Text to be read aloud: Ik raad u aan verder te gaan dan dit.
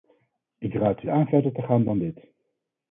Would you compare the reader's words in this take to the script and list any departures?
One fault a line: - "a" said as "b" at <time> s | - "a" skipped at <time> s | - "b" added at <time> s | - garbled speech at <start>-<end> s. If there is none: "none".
none